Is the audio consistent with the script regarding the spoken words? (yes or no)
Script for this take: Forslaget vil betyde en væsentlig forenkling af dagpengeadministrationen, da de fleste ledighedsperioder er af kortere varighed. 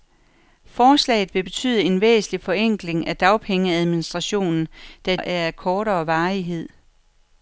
no